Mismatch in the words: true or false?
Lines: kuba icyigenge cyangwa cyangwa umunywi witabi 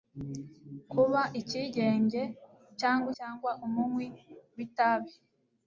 false